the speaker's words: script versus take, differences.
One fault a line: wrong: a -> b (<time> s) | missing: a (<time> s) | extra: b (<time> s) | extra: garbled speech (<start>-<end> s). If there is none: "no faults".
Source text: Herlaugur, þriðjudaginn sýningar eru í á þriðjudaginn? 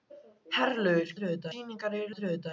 no faults